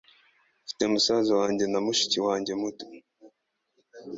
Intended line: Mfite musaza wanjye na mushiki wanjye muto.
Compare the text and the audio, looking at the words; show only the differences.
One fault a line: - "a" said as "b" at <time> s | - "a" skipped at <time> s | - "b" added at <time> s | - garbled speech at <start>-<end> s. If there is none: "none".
none